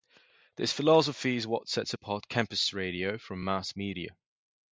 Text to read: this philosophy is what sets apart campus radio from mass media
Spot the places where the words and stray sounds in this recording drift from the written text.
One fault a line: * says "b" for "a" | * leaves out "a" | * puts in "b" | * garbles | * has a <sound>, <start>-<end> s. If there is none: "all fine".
all fine